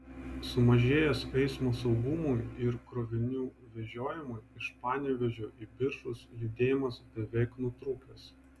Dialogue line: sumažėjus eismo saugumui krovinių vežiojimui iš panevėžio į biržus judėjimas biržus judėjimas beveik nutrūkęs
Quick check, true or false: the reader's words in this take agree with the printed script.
false